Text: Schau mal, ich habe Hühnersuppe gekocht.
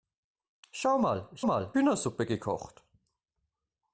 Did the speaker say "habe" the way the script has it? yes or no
no